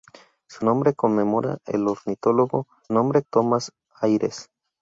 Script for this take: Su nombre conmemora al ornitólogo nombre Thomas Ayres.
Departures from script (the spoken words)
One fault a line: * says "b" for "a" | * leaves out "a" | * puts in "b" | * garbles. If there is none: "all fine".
all fine